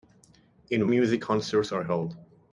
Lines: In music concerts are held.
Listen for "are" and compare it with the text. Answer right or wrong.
right